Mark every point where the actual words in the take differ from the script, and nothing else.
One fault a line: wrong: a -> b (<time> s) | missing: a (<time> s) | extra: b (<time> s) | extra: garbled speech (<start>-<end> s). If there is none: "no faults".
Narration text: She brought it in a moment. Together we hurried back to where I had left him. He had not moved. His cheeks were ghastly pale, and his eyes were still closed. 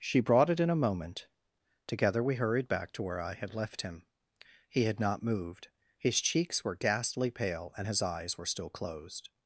no faults